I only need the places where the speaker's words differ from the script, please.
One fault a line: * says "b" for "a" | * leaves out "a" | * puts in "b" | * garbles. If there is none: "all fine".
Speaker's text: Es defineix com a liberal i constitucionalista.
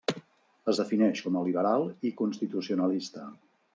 all fine